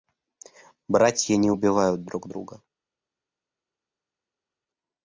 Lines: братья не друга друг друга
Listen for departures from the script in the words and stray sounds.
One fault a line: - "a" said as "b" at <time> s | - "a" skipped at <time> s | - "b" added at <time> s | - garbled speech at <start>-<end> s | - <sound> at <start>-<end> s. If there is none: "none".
- "друга" said as "убивают" at 1.5 s